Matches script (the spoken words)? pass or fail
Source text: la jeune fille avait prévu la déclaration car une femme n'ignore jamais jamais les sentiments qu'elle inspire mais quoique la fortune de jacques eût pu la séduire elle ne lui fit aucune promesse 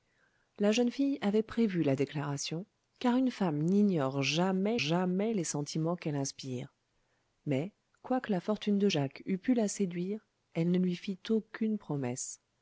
pass